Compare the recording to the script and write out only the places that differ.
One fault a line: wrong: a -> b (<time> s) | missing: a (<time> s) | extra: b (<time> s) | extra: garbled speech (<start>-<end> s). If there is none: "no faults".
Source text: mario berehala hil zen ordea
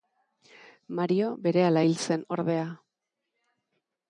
no faults